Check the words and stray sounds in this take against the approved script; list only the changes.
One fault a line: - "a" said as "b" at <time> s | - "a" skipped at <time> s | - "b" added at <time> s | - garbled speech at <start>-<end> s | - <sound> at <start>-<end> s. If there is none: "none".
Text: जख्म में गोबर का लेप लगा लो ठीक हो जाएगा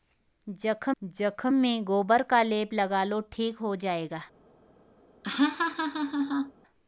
- "जख्म" added at 1.0 s
- laugh at 5.2-6.5 s